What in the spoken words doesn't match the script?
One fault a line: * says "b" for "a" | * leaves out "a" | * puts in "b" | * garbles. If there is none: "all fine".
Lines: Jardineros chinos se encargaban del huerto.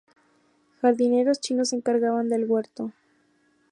all fine